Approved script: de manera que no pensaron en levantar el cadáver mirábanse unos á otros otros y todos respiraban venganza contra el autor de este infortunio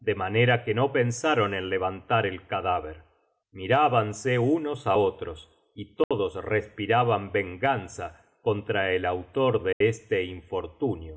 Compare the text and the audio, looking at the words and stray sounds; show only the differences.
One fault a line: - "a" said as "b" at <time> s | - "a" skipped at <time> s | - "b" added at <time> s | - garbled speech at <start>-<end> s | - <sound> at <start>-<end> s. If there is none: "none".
- "otros" skipped at 5.5 s
- dropout at 6.0-6.1 s
- dropout at 9.7-9.8 s